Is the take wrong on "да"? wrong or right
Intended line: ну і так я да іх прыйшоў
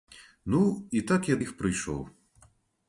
wrong